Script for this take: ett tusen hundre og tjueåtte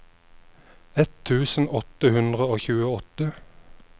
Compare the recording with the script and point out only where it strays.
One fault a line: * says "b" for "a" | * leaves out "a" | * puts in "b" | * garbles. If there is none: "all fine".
* puts in "åtte"